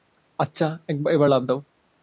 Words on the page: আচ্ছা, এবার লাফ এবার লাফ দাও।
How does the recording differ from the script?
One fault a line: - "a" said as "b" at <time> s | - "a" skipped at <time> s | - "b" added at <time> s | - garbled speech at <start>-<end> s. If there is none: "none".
- "এবার লাফ" skipped at 1.4 s